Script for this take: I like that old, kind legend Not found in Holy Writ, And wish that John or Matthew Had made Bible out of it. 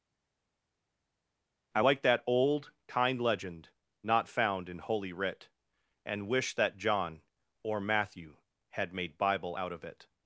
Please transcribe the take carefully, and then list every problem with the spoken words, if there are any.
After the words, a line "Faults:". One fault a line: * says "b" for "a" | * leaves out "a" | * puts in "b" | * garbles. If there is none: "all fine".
I like that old, kind legend Not found in Holy Writ, And wish that John or Matthew Had made Bible out of it.
Faults:
all fine